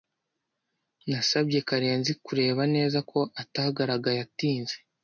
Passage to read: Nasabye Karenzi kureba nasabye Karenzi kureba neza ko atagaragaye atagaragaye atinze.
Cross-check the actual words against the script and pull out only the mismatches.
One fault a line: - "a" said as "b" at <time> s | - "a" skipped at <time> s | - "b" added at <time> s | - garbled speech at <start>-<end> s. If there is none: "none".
- "nasabye Karenzi kureba" skipped at 2.6 s
- "atagaragaye" skipped at 4.2 s